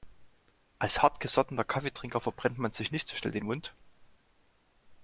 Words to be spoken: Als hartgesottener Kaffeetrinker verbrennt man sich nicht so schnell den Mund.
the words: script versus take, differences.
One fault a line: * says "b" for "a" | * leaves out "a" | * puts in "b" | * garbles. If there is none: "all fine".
all fine